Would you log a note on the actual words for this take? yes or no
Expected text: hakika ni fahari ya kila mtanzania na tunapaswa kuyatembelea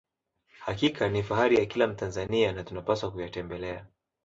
no